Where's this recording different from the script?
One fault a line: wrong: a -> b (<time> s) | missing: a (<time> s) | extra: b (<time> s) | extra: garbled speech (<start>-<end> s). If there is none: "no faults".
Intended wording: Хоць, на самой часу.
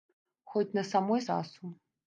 no faults